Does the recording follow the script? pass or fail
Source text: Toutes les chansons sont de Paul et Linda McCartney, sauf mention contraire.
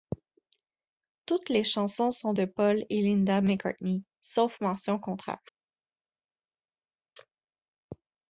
pass